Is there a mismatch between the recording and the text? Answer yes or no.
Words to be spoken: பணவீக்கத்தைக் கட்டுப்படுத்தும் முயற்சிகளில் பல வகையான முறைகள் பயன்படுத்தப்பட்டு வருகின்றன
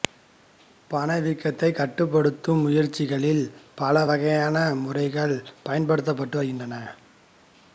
no